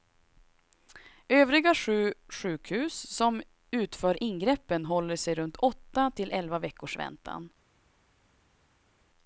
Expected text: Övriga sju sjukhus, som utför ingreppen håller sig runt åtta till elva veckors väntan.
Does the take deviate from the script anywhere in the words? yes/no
no